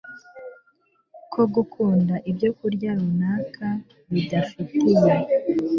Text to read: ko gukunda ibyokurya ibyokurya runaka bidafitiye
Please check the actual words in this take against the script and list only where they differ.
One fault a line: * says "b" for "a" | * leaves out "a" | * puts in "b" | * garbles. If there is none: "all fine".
* leaves out "ibyokurya"